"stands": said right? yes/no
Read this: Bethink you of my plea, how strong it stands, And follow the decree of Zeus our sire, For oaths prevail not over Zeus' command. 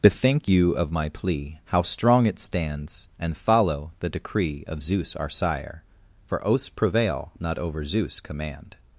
yes